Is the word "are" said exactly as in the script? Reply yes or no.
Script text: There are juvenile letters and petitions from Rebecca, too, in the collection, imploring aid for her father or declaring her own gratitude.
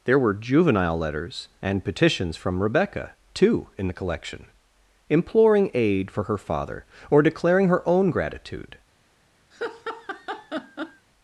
no